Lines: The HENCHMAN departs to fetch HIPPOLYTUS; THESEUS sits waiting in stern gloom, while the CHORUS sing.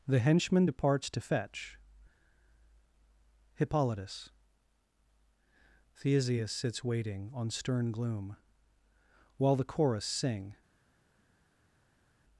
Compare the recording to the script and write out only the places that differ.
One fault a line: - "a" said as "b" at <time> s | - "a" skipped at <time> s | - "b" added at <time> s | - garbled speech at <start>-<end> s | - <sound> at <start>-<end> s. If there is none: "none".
- "in" said as "on" at 7.3 s